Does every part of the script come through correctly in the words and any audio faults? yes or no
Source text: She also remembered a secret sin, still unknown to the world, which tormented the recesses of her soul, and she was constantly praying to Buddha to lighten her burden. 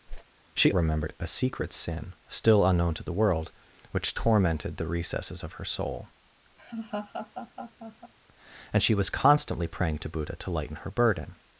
no